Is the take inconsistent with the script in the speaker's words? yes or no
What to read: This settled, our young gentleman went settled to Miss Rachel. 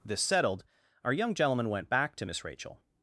yes